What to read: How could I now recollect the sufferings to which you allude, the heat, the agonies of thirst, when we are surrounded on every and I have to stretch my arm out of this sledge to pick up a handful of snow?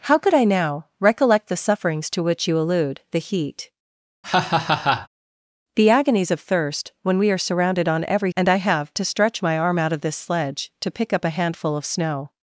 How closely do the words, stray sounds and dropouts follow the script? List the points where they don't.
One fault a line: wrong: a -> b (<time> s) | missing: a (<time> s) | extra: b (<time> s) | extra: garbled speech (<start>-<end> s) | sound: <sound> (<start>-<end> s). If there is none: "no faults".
sound: laugh (4.2-5.1 s)